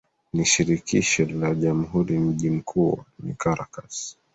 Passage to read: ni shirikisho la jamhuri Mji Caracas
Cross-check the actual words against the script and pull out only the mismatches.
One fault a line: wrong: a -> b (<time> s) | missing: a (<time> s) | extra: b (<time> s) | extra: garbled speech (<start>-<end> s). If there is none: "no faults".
extra: mkuu ni (2.5 s)